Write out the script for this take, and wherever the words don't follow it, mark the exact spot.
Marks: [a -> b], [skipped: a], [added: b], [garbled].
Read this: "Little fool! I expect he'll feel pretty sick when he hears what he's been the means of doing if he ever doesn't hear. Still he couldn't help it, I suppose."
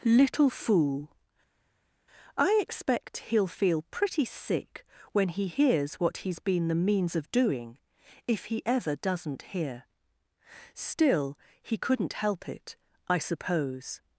"Little fool! I expect he'll feel pretty sick when he hears what he's been the means of doing if he ever doesn't hear. Still he couldn't help it, I suppose."